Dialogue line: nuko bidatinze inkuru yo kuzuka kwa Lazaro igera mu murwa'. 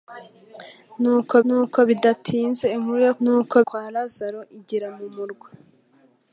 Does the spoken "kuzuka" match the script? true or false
false